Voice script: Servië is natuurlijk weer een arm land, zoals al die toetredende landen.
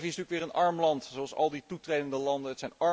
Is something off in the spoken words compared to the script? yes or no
no